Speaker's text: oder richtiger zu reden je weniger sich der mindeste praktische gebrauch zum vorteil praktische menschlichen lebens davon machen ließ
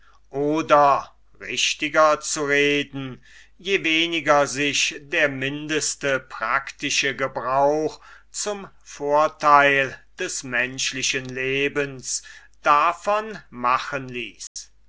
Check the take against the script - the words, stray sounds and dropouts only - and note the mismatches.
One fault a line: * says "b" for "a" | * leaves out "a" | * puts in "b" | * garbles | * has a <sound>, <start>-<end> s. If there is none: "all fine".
* says "des" for "praktische"
* has a dropout, 14.5-14.6 s